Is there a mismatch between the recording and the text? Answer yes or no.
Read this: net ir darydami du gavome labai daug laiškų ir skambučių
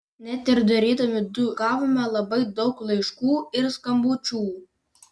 no